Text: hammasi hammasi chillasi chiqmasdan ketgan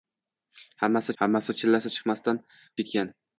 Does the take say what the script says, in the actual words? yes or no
yes